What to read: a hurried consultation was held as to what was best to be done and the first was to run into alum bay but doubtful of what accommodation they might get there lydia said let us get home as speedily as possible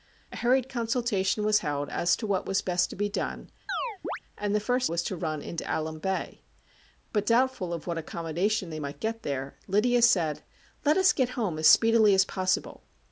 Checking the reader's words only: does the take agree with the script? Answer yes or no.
yes